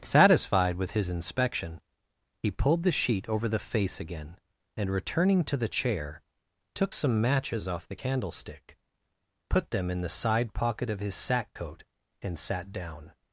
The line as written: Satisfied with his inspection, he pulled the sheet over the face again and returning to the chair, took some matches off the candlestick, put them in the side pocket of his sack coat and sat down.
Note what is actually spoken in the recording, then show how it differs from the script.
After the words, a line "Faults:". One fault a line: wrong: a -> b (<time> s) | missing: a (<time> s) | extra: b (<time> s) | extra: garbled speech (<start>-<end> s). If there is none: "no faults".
Satisfied with his inspection, he pulled the sheet over the face again and returning to the chair, took some matches off the candlestick, put them in the side pocket of his sack coat and sat down.
Faults:
no faults